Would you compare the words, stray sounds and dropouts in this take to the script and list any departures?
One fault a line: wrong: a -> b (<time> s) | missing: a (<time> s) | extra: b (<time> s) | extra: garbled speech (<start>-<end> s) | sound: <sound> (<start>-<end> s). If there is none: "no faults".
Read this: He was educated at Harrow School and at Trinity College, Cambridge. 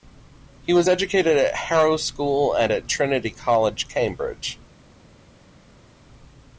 no faults